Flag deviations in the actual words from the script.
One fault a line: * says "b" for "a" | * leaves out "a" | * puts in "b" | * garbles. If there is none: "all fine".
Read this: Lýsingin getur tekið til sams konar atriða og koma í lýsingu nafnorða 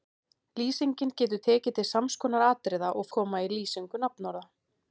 all fine